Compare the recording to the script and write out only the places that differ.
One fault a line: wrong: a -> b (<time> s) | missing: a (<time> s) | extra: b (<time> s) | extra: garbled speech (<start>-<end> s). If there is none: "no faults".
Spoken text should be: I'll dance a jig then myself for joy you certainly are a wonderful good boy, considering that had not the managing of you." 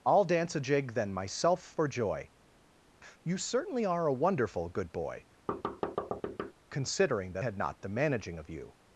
no faults